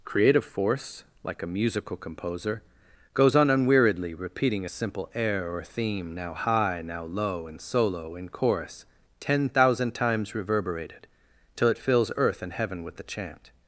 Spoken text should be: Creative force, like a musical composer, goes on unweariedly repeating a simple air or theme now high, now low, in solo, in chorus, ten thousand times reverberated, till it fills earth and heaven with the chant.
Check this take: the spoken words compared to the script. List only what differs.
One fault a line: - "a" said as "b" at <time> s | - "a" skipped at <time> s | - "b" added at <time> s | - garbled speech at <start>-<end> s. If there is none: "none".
none